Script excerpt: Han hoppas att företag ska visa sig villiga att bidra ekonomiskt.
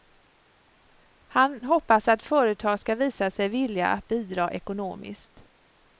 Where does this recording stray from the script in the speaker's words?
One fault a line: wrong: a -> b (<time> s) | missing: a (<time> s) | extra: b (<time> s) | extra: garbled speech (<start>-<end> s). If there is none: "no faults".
no faults